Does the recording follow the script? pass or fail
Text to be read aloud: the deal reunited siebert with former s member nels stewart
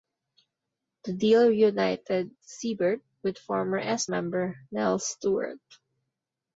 pass